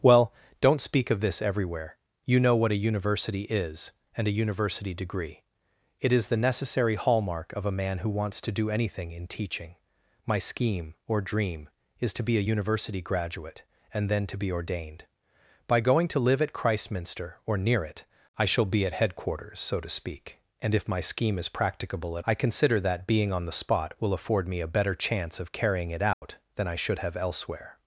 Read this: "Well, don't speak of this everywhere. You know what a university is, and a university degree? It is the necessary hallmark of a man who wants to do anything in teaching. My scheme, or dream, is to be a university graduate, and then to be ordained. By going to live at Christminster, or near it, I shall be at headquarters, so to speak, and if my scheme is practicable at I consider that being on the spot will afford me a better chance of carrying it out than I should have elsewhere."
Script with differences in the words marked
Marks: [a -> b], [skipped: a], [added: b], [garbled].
"Well, don't speak of this everywhere. You know what a university is, and a university degree? It is the necessary hallmark of a man who wants to do anything in teaching. My scheme, or dream, is to be a university graduate, and then to be ordained. By going to live at Christminster, or near it, I shall be at headquarters, so to speak, and if my scheme is practicable at I consider that being on the spot will afford me a better chance of carrying it out than I should have elsewhere."